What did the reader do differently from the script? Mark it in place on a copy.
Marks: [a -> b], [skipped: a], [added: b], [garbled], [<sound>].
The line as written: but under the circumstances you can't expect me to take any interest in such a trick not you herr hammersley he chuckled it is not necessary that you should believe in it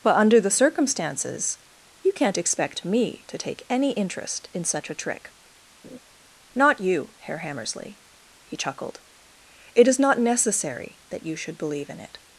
but under the circumstances you can't expect me to take any interest in such a trick [laugh] not you herr hammersley he chuckled it is not necessary that you should believe in it